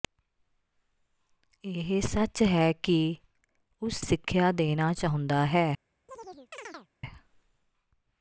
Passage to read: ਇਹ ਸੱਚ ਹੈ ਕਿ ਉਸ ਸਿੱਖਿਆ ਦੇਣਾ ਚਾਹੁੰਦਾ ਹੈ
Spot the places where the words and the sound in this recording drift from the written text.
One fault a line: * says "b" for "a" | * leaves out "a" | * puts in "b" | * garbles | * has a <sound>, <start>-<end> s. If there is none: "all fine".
* has a chirp, 6.1-6.9 s